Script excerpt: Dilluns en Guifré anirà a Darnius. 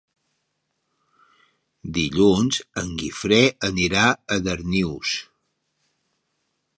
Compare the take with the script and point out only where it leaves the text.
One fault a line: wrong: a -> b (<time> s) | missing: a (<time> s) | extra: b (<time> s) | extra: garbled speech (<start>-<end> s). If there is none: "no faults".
no faults